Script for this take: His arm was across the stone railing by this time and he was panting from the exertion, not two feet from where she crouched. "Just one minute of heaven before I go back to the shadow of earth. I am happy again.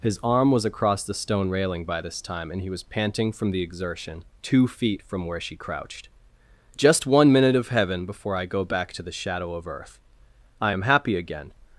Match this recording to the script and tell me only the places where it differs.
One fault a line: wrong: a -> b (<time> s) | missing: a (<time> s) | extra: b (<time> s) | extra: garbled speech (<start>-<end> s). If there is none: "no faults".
missing: not (4.2 s)